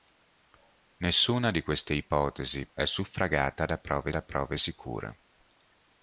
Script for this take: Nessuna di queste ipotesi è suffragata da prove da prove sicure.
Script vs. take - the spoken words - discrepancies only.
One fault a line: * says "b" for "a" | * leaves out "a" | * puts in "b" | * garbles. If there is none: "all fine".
all fine